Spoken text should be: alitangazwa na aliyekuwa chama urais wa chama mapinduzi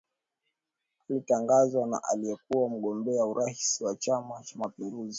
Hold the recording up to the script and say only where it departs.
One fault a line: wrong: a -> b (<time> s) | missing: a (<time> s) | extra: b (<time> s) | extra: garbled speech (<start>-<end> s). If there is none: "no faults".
wrong: chama -> mgombea (2.7 s)
extra: cha (4.4 s)